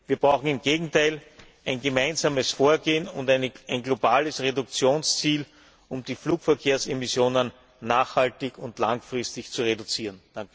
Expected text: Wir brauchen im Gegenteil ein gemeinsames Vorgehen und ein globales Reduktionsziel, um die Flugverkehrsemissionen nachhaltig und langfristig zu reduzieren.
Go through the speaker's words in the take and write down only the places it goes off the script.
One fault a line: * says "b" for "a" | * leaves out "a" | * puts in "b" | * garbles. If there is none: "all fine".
all fine